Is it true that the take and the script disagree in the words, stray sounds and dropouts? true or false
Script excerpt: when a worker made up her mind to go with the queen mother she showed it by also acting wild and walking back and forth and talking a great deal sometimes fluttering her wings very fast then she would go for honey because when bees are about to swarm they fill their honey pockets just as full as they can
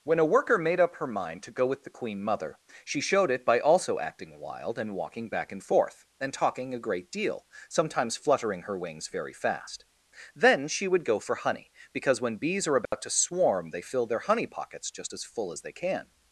true